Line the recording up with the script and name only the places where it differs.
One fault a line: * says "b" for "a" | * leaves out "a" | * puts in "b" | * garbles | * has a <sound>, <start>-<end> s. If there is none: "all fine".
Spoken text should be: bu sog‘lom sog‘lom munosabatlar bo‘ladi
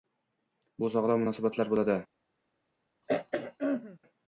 * leaves out "sog‘lom"
* has a throat clearing, 3.0-4.0 s